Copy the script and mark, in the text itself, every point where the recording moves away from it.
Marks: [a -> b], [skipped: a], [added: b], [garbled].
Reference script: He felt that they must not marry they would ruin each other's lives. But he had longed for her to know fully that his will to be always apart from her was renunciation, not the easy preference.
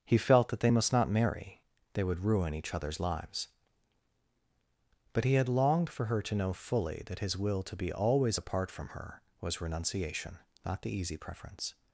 He felt that they must not marry they would ruin each other's lives. But he had longed for her to know fully that his will to be always apart from her was renunciation, not the easy preference.